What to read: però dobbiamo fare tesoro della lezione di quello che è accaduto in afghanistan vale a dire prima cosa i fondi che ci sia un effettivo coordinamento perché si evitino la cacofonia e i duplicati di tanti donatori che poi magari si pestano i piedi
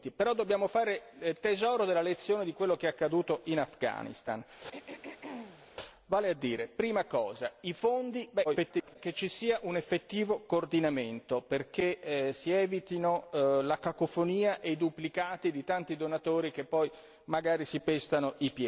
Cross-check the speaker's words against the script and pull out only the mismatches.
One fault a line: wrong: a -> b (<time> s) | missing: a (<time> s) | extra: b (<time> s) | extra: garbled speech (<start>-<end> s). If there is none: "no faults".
extra: garbled speech (8.4-9.0 s)